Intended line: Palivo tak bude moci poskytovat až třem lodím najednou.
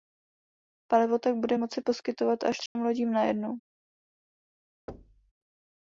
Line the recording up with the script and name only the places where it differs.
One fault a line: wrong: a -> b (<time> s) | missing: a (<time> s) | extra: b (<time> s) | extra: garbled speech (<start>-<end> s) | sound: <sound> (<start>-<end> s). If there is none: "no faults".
sound: dropout (2.7-2.8 s)
sound: thud (4.9-5.3 s)